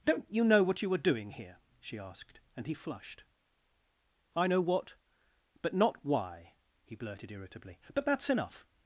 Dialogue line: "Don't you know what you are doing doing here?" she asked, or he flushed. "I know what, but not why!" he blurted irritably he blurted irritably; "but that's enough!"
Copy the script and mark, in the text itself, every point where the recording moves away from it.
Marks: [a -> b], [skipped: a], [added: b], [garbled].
"Don't you know what you are doing [skipped: doing] here?" she asked, [or -> and] he flushed. "I know what, but not why!" he blurted irritably [skipped: he blurted irritably;] "but that's enough!"